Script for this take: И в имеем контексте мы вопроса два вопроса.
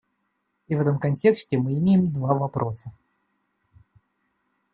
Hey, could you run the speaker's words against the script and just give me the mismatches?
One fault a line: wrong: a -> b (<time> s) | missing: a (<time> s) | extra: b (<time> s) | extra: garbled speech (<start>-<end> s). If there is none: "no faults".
wrong: имеем -> этом (0.8 s)
wrong: вопроса -> имеем (1.8 s)